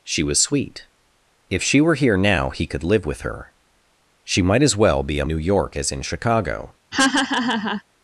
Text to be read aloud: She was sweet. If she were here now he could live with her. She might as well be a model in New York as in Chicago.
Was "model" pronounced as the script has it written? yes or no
no